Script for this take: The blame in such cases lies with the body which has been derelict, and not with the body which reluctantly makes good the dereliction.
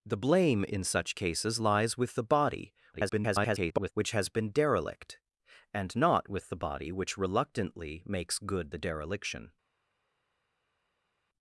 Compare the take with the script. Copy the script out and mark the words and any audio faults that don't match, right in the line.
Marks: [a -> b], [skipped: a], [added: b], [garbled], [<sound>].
The blame in such cases lies with the body [garbled] which has been derelict, and not with the body which reluctantly makes good the dereliction.